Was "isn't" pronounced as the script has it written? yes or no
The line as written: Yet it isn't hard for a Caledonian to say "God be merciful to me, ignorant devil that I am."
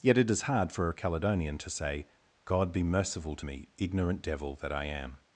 no